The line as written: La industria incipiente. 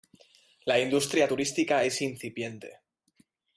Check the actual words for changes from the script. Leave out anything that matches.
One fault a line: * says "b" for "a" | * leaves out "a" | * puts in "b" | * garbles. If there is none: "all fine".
* puts in "turística es"